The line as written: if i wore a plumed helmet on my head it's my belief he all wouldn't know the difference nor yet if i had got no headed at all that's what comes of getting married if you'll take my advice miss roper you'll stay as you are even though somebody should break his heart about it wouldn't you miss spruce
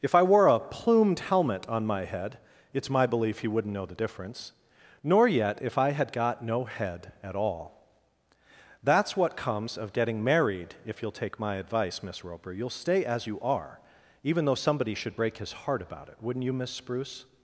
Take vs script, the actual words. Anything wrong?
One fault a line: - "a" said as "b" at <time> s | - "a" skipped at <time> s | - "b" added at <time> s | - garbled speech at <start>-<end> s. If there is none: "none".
- "all" skipped at 3.5 s
- "headed" said as "head" at 6.7 s